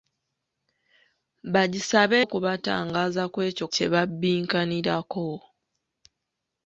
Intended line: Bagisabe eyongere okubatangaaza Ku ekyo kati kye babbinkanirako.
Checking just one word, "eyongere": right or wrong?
wrong